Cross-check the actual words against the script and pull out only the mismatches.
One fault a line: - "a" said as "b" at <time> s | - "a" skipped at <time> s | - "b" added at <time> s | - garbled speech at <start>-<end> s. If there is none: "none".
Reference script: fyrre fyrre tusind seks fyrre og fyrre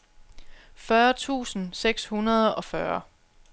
- "fyrre" skipped at 1.1 s
- "fyrre" said as "hundrede" at 2.1 s